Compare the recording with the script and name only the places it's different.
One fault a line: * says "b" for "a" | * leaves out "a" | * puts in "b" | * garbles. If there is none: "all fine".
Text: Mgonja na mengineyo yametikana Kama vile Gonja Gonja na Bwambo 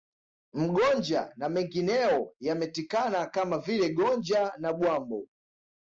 * leaves out "Gonja"